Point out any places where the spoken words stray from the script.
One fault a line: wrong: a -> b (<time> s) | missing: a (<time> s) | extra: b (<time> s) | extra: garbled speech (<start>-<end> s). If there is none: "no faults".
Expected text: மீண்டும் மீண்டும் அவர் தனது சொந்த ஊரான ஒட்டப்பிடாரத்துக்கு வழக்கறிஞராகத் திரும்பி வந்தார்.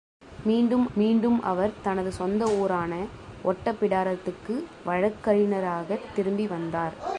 no faults